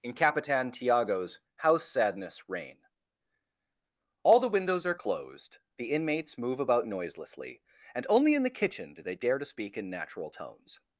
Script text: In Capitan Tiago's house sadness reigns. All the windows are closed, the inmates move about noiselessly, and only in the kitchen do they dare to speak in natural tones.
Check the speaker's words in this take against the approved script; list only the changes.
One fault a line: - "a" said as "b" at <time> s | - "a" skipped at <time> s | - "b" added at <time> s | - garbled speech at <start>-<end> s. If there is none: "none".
- "reigns" said as "reign" at 2.5 s